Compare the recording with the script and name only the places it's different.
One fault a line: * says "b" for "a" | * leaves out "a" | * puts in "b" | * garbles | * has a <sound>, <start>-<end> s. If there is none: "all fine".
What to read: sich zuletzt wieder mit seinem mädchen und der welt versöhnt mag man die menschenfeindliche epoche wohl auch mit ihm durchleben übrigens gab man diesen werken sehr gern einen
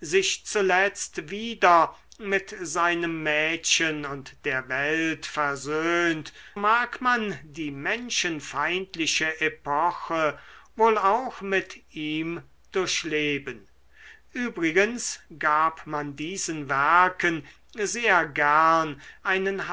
all fine